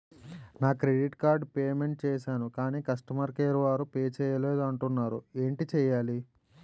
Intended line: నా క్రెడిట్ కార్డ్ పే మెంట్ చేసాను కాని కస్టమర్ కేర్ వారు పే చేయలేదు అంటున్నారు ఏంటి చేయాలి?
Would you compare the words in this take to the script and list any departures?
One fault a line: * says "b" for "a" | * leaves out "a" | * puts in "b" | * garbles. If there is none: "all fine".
all fine